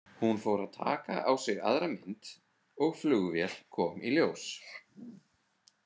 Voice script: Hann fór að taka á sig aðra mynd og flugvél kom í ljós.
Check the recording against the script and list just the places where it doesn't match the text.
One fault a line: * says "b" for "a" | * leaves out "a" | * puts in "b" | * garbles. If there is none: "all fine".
* says "Hún" for "Hann"